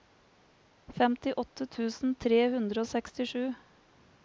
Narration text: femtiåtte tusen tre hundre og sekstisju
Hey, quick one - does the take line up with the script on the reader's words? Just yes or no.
yes